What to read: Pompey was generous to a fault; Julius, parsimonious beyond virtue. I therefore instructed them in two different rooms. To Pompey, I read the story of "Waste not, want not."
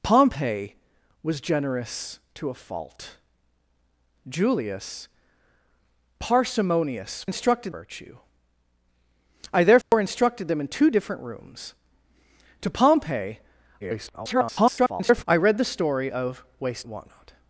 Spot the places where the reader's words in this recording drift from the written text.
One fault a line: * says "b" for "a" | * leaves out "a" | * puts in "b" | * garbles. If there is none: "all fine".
* says "instructed" for "beyond"
* garbles
* leaves out "not"